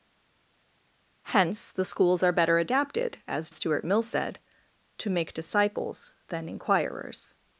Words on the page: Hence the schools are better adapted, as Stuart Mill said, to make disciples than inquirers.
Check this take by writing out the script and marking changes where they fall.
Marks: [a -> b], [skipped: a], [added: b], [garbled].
Hence the schools are better adapted, as Stuart Mill said, to make disciples than inquirers.